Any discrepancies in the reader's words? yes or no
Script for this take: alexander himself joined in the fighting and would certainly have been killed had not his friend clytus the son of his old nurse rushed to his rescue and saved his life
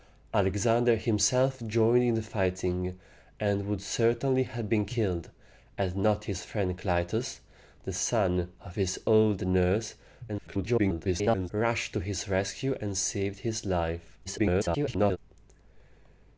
yes